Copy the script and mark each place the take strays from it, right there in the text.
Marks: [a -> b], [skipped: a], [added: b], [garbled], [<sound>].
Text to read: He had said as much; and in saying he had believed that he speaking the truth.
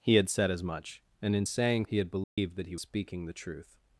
He had said as much; and in saying he had believed [dropout] that he speaking the truth.